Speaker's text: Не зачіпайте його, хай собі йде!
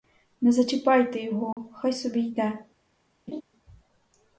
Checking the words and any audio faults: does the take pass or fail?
fail